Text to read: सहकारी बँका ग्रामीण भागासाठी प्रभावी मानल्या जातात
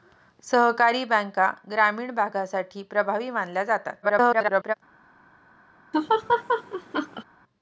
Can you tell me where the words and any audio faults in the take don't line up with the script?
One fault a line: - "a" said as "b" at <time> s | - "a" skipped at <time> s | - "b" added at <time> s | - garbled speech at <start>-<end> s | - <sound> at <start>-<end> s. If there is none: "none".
- garbled speech at 4.0-4.7 s
- laugh at 5.9-7.2 s